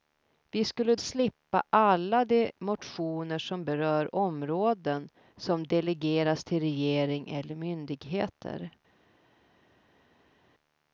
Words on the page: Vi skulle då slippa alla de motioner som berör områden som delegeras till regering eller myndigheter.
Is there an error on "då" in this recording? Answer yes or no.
yes